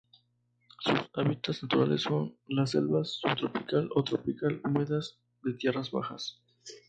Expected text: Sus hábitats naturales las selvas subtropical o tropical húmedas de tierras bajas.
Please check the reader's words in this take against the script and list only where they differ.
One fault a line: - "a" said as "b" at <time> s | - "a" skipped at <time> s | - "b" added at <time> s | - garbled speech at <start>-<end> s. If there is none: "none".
- "son" added at 2.0 s